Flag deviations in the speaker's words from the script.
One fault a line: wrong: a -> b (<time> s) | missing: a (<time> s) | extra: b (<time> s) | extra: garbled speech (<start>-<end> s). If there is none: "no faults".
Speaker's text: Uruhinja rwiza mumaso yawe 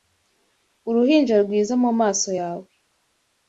no faults